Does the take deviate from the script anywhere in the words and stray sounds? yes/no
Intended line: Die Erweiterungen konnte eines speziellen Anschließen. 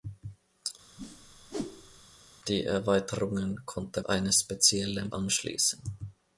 yes